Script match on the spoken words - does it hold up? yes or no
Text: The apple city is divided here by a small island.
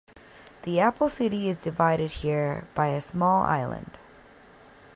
yes